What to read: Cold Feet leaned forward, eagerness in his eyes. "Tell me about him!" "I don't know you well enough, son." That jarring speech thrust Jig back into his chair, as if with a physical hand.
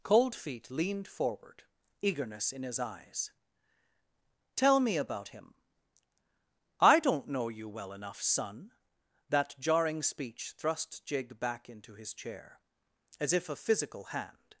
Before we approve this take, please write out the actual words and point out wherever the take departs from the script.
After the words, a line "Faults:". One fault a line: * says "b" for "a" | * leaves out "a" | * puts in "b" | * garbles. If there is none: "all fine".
Cold Feet leaned forward, eagerness in his eyes. "Tell me about him!" "I don't know you well enough, son." That jarring speech thrust Jig back into his chair, as if a physical hand.
Faults:
* leaves out "with"